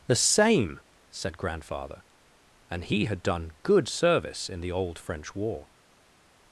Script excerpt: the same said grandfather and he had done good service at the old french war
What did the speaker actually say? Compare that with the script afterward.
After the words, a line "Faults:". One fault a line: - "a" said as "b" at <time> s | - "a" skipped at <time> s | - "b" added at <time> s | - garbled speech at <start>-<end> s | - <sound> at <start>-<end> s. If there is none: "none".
the same said grandfather and he had done good service in the old french war
Faults:
- "at" said as "in" at 4.5 s